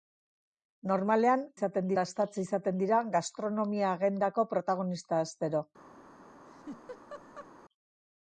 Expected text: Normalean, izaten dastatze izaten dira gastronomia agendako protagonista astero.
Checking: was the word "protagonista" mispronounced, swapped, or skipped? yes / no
no